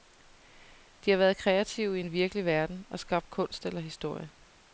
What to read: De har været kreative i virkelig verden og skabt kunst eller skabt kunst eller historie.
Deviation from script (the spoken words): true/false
true